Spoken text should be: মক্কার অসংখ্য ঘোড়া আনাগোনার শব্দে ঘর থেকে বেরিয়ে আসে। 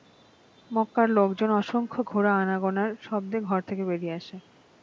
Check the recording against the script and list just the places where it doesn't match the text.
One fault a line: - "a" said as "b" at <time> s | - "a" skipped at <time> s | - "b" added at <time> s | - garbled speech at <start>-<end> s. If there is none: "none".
- "লোকজন" added at 1.1 s